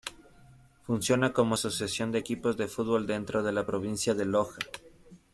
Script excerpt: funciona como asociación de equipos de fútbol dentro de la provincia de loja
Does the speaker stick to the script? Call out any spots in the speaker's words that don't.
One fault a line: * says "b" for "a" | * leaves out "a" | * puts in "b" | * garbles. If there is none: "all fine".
all fine